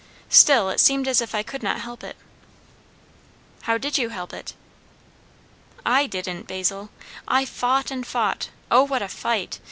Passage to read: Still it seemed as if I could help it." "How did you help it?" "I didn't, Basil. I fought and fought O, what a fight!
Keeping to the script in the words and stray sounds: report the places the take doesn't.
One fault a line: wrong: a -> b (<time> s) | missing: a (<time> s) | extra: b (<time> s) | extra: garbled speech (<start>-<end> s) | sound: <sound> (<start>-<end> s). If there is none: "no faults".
extra: not (1.6 s)